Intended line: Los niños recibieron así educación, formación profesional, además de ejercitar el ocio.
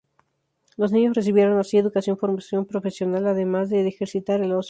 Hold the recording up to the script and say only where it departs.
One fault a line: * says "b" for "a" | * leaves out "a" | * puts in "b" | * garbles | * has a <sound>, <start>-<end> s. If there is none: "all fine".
all fine